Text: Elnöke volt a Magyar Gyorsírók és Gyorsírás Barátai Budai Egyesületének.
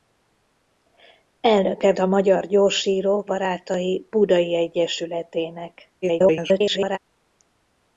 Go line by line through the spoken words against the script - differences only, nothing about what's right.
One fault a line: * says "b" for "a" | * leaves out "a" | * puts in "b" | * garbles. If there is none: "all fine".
* leaves out "volt"
* leaves out "és Gyorsírás"
* garbles